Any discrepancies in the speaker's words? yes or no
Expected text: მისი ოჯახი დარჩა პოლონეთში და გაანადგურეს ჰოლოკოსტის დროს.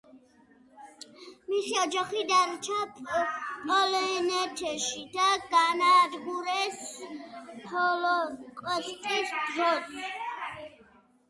no